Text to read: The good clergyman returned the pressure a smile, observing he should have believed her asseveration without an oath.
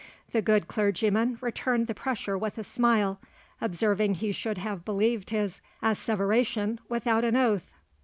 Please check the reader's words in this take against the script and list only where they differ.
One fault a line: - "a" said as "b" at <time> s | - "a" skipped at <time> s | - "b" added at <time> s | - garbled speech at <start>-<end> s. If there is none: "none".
- "with" added at 2.4 s
- "her" said as "his" at 5.3 s